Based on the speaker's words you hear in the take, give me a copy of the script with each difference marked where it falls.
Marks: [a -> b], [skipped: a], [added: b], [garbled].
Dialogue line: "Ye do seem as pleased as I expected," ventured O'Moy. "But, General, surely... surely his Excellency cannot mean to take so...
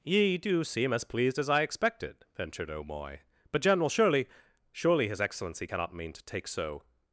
"Ye do seem as pleased as I expected," ventured O'Moy. "But, General, surely... surely his Excellency cannot mean to take so...